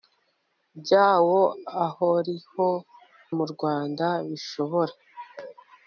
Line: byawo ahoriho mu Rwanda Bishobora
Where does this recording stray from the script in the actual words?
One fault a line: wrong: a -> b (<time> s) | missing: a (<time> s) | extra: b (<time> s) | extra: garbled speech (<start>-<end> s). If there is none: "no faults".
no faults